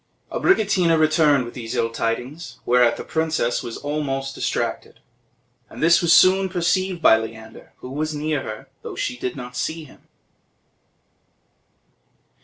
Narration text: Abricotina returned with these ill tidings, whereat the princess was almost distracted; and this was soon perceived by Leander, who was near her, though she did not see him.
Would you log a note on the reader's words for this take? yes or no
no